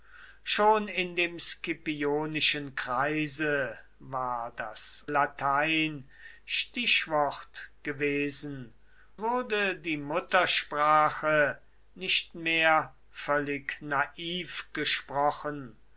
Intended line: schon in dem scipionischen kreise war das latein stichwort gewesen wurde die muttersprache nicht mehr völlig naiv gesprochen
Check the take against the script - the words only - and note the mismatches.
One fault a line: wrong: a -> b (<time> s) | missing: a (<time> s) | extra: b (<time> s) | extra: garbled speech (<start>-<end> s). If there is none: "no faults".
no faults